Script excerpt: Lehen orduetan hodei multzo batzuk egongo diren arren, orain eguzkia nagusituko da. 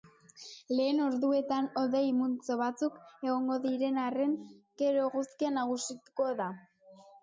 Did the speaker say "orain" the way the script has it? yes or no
no